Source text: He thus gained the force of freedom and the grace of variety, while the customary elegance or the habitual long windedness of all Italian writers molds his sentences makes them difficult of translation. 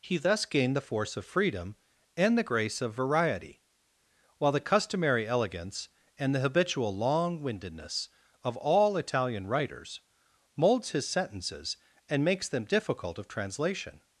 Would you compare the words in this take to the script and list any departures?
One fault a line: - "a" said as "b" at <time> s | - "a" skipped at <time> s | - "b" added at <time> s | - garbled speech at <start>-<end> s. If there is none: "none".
- "or" said as "and" at 6.2 s
- "and" added at 12.1 s